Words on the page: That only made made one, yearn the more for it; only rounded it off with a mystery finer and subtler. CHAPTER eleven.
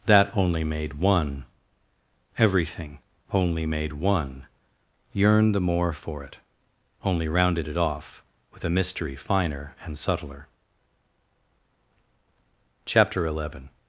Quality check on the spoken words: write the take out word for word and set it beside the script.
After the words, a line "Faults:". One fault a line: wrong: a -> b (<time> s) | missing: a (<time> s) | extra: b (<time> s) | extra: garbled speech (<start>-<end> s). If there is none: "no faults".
That only made one, everything only made one, yearn the more for it; only rounded it off with a mystery finer and subtler. CHAPTER eleven.
Faults:
extra: one everything only (0.9 s)